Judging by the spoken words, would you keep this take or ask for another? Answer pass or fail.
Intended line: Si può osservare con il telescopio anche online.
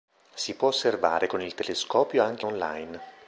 pass